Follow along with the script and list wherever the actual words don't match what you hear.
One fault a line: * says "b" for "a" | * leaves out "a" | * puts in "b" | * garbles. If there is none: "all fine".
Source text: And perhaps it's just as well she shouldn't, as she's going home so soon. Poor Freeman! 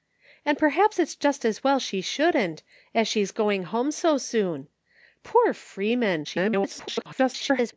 * garbles